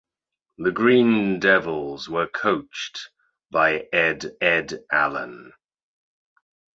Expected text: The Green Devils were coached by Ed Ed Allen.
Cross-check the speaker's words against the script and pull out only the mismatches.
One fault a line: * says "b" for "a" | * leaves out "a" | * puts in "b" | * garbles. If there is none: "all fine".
all fine